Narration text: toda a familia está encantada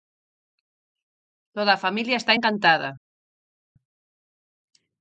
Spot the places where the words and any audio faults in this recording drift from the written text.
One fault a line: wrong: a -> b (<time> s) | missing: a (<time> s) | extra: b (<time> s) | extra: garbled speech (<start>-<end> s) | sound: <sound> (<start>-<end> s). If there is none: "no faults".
no faults